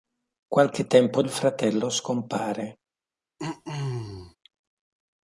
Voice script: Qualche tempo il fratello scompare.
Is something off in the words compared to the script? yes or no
no